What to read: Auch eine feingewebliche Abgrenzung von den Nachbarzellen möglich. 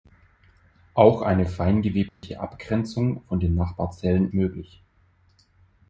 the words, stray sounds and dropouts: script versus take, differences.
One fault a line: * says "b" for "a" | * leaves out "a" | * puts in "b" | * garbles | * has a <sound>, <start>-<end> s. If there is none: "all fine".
* has a dropout, 2.1-2.2 s